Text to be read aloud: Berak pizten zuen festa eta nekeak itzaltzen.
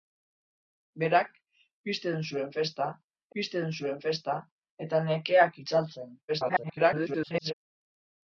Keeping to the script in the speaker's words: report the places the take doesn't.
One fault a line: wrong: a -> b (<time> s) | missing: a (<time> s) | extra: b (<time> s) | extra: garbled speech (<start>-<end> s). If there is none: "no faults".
extra: pizten zuen festa (3.4 s)
extra: garbled speech (6.3-7.5 s)